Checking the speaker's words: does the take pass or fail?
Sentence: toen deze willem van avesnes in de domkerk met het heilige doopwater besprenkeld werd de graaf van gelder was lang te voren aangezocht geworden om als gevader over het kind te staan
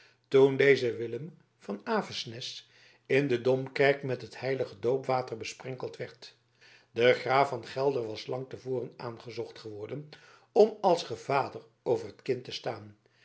pass